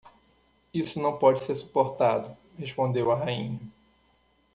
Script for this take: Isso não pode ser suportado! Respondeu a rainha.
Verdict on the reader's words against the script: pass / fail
pass